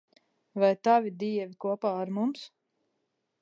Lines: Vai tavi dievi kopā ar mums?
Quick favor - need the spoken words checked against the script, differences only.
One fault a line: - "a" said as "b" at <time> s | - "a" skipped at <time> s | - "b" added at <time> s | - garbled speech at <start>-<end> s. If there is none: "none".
none